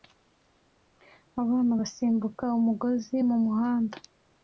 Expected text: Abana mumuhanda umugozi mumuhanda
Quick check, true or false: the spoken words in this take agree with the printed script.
false